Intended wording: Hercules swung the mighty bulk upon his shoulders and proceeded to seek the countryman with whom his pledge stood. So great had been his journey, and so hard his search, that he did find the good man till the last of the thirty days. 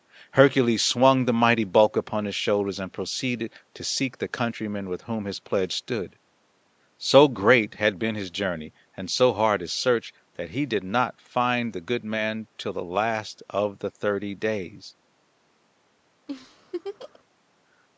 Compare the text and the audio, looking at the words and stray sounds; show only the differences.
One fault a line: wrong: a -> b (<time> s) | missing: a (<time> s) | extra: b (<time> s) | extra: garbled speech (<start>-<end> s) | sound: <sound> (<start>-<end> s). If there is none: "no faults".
extra: not (10.8 s)
sound: laugh (16.3-17.2 s)